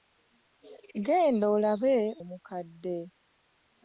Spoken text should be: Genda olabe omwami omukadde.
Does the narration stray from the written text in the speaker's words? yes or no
yes